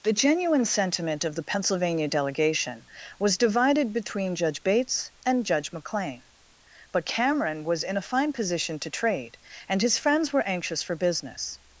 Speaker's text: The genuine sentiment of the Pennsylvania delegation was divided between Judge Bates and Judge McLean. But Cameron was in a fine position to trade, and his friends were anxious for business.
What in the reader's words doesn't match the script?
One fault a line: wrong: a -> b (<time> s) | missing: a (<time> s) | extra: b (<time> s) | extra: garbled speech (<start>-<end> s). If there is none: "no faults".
no faults